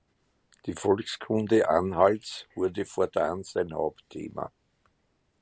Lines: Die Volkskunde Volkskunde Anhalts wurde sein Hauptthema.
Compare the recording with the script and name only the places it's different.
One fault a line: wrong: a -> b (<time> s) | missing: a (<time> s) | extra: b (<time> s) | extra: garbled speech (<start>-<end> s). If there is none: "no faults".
missing: Volkskunde (1.7 s)
extra: fortan (2.8 s)